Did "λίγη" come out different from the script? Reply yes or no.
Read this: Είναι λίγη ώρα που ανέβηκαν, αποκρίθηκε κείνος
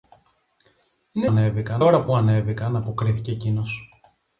yes